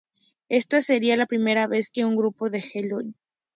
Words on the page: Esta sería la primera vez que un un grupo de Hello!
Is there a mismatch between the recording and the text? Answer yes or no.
yes